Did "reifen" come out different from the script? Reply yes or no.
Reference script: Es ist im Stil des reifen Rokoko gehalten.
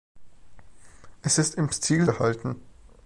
yes